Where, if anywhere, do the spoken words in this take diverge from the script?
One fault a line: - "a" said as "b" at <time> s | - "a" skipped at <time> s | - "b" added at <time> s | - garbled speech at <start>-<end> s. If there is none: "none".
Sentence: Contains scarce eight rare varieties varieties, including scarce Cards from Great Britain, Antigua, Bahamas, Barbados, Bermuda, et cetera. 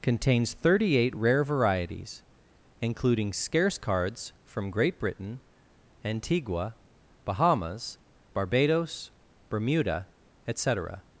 - "scarce" said as "thirty" at 0.5 s
- "varieties" skipped at 2.2 s